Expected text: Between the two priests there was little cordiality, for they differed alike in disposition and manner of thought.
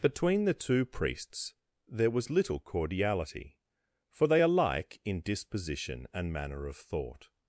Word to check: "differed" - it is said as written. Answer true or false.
false